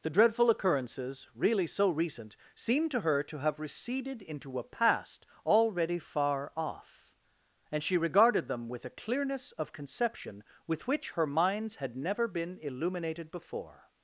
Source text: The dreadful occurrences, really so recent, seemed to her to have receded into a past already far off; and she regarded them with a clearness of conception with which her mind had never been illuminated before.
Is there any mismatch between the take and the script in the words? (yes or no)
yes